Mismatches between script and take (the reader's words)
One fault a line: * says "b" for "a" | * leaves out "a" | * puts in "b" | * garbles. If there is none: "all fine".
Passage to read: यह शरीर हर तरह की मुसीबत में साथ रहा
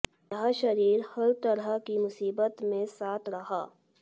all fine